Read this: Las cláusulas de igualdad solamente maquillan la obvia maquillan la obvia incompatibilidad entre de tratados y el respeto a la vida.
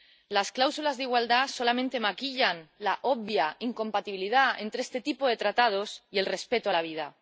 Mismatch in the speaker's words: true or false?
true